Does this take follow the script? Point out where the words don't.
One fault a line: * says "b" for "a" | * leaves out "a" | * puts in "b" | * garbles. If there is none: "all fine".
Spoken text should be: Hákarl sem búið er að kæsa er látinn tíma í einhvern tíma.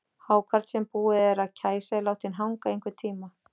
* says "hanga" for "tíma"